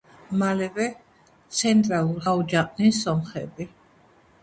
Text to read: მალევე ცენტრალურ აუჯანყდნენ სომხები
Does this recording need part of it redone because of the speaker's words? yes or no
no